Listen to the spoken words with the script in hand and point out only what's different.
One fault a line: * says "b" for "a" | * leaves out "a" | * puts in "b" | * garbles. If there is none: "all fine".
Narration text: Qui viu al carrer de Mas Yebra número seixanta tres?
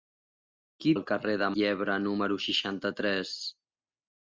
* leaves out "viu"
* leaves out "Mas"